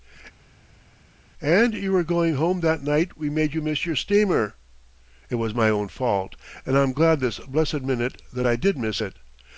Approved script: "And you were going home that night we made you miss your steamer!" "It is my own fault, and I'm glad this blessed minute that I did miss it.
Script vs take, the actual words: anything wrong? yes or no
yes